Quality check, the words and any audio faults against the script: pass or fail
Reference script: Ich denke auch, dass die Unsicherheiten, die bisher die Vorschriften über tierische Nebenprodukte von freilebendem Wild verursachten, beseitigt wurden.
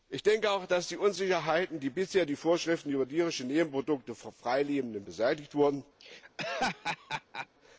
fail